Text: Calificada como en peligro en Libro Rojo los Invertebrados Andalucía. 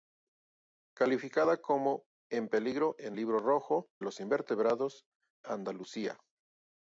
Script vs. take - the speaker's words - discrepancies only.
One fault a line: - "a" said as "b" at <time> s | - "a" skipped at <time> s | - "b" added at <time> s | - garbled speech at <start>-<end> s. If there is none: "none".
none